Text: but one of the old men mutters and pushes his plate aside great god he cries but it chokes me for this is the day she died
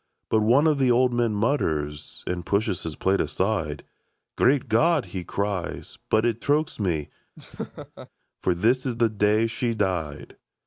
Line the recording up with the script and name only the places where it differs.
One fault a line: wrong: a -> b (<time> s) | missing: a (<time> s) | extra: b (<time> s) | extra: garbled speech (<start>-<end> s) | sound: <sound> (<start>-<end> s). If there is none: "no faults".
sound: laugh (7.4-8.1 s)